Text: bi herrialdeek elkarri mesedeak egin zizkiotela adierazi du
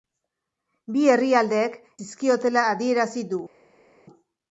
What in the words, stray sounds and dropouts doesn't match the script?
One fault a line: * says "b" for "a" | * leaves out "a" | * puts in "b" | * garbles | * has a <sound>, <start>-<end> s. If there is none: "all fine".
* leaves out "elkarri mesedeak egin"